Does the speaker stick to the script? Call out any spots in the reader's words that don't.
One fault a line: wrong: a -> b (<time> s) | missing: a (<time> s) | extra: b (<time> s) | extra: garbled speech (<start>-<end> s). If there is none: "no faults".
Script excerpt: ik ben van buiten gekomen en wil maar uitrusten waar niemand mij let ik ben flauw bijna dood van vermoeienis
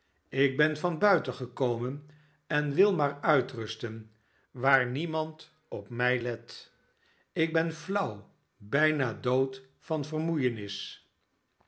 extra: op (5.7 s)